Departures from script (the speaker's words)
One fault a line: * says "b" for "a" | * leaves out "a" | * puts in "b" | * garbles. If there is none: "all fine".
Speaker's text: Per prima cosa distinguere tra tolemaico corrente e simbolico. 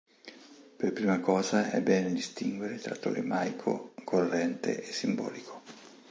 * puts in "è bene"